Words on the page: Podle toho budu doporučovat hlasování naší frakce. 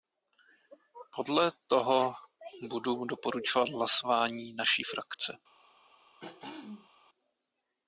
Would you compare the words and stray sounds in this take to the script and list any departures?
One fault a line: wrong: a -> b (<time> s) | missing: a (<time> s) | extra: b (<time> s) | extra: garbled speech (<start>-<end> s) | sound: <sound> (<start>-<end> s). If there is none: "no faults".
sound: throat clearing (6.2-6.9 s)